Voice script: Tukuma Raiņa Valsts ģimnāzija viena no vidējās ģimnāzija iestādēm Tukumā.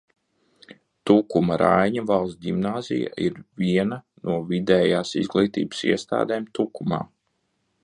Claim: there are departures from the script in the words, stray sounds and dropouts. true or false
true